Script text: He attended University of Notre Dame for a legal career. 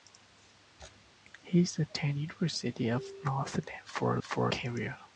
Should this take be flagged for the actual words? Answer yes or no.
yes